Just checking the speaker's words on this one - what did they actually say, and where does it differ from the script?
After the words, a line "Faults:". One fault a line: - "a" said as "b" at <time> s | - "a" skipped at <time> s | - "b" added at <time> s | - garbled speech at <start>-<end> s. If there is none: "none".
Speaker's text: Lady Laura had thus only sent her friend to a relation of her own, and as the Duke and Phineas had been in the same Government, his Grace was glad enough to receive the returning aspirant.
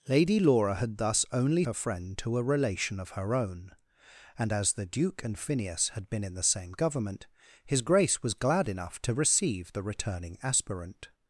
Lady Laura had thus only her friend to a relation of her own, and as the Duke and Phineas had been in the same Government, his Grace was glad enough to receive the returning aspirant.
Faults:
- "sent" skipped at 1.6 s